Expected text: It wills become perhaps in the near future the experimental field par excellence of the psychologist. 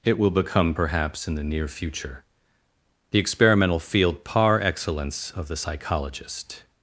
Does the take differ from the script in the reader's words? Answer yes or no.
yes